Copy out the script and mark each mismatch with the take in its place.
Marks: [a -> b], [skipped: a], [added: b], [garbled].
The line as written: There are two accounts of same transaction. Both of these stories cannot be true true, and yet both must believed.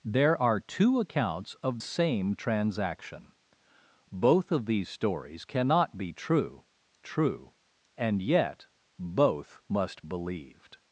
There are two accounts of same transaction. Both of these stories cannot be true true, and yet both must believed.